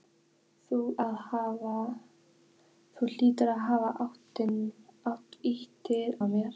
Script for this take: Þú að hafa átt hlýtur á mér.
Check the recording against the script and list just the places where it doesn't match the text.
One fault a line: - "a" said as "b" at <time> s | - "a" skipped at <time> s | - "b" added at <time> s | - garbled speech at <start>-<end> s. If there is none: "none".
none